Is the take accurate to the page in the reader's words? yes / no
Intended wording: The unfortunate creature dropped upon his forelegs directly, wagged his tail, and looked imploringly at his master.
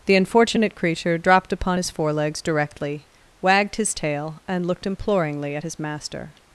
yes